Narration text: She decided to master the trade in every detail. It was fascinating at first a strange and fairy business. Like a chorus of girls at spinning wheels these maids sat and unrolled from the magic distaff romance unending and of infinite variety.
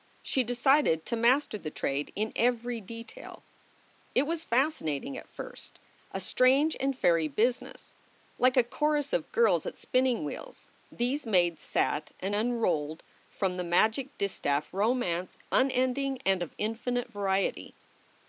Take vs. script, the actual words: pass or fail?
pass